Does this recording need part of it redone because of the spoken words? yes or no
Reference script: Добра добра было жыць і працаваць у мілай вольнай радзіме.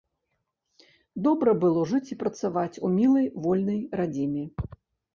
yes